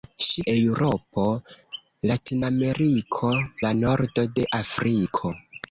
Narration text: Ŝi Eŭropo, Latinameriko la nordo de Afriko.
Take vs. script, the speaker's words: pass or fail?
pass